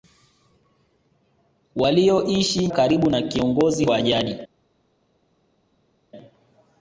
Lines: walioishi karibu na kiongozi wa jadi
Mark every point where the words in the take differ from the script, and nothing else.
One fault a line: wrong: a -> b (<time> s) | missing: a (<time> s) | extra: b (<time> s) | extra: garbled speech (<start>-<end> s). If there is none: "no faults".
no faults